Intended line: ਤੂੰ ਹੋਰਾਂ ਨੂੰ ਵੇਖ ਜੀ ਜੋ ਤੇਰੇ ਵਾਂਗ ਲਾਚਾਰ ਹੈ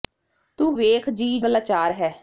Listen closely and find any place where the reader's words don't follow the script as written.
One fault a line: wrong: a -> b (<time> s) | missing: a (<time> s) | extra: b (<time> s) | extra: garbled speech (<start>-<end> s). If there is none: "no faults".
missing: ਹੋਰਾਂ ਨੂੰ (0.7 s)
missing: ਜੋ ਤੇਰੇ ਵਾਂਗ (1.4 s)